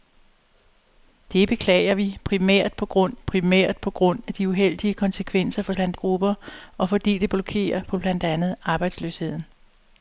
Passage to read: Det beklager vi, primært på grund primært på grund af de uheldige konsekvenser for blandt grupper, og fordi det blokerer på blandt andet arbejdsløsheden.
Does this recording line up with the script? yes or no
yes